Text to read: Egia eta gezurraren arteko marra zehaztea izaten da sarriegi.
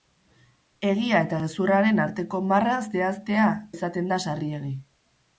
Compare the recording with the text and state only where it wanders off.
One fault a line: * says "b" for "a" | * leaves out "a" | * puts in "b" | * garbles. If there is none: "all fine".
all fine